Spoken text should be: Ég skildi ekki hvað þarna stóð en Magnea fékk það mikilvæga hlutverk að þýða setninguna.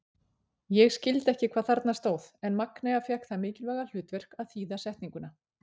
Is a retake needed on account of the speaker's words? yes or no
no